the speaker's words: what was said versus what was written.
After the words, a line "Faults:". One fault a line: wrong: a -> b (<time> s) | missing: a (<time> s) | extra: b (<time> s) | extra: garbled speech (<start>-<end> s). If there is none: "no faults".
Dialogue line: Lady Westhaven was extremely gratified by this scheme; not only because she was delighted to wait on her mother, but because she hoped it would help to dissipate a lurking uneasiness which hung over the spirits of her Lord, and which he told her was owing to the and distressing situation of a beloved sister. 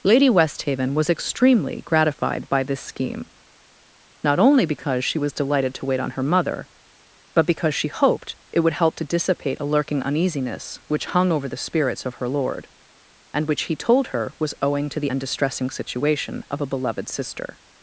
Lady Westhaven was extremely gratified by this scheme; not only because she was delighted to wait on her mother, but because she hoped it would help to dissipate a lurking uneasiness which hung over the spirits of her Lord, and which he told her was owing to the and distressing situation of a beloved sister.
Faults:
no faults